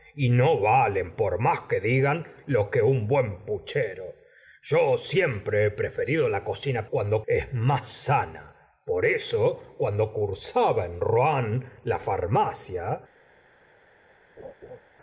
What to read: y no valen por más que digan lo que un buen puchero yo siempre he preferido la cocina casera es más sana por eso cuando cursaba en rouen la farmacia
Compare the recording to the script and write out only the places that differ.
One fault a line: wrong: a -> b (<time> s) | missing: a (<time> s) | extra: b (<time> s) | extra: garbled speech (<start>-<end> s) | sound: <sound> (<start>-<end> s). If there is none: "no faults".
wrong: casera -> cuando (6.9 s)
sound: laugh (14.4-14.8 s)